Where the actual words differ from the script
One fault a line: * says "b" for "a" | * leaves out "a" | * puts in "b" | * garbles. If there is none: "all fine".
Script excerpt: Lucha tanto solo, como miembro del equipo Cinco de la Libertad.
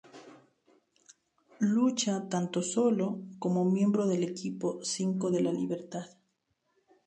all fine